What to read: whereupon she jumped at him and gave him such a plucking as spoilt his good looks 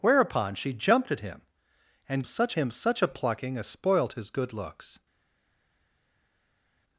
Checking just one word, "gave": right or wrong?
wrong